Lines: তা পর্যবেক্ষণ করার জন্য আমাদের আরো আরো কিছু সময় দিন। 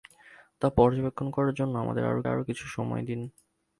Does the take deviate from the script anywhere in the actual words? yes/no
no